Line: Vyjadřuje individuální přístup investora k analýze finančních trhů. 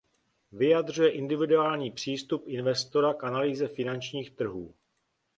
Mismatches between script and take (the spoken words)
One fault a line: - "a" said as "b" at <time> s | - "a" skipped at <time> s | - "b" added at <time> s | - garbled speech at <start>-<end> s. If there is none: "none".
none